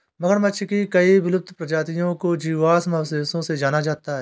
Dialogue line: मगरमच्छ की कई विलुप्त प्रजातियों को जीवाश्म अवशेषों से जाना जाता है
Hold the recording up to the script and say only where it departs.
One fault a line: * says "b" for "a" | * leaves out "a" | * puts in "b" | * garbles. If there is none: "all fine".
all fine